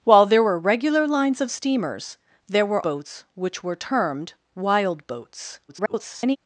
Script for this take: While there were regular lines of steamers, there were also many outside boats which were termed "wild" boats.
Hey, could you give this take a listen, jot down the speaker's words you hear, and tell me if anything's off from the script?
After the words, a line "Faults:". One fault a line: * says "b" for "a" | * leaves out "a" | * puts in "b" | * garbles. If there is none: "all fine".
While there were regular lines of steamers, there were boats which were termed "wild" boats. [garbled]
Faults:
* leaves out "also many outside"
* garbles